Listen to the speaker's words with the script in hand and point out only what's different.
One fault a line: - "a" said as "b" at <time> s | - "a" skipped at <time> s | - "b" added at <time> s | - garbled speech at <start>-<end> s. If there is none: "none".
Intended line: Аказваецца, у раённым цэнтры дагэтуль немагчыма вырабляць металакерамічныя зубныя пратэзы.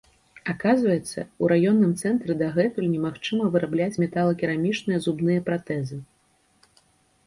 none